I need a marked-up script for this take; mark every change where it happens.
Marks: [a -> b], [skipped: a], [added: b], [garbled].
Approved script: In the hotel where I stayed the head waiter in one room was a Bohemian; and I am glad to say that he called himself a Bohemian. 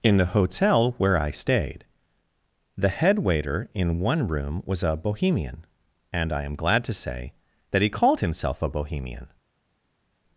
In the hotel where I stayed the head waiter in one room was a Bohemian; and I am glad to say that he called himself a Bohemian.